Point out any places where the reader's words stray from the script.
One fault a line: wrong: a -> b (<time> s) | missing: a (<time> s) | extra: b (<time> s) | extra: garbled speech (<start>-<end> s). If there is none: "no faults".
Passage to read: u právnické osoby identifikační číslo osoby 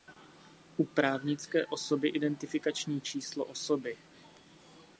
no faults